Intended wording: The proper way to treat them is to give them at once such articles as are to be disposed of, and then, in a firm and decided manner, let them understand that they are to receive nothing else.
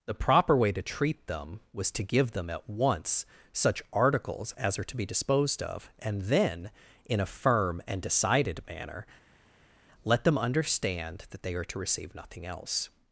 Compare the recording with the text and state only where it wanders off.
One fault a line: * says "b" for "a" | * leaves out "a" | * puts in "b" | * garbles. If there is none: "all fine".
* says "was" for "is"